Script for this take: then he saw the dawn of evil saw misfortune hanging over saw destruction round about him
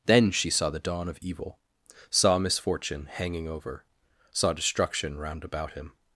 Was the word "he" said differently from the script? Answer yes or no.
yes